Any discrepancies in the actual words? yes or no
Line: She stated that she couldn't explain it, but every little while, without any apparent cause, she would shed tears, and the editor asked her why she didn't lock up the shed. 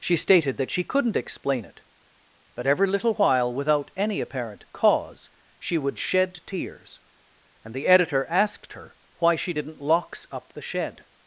yes